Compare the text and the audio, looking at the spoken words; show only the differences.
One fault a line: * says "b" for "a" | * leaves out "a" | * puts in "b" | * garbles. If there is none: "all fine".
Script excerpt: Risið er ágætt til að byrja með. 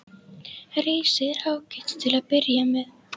all fine